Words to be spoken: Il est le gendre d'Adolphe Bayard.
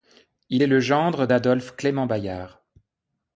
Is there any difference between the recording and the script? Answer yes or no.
yes